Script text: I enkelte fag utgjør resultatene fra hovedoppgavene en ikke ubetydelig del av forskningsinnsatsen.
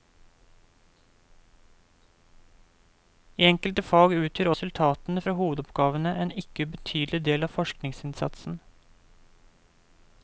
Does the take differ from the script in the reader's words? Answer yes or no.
no